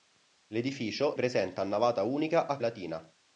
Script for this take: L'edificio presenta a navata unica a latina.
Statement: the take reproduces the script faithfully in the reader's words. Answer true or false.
true